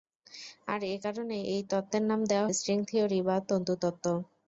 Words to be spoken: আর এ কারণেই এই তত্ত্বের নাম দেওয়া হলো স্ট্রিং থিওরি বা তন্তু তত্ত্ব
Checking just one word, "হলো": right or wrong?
wrong